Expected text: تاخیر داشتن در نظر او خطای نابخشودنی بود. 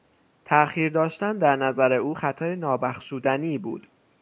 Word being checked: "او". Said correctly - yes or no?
yes